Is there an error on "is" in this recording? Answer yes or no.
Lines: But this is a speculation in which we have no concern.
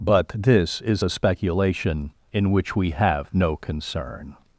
no